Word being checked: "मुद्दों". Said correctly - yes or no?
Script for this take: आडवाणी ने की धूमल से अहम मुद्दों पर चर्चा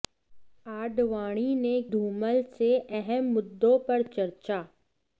yes